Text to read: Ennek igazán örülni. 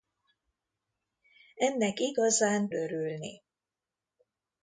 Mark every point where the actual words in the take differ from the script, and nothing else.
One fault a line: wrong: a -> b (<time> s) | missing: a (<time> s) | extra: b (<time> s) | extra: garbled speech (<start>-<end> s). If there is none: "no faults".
no faults